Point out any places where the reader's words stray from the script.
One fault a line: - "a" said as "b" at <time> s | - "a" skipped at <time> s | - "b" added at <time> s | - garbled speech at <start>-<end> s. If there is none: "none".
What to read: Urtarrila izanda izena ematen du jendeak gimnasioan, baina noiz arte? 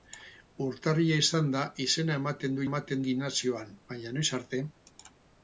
- "jendeak" said as "ematen" at 2.7 s